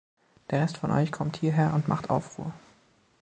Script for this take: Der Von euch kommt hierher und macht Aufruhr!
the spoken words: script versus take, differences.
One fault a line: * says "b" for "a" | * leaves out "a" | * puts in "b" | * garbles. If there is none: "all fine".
* puts in "Rest"